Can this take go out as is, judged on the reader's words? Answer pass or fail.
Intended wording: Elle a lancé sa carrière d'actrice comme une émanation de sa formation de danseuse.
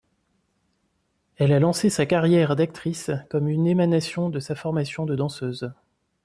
pass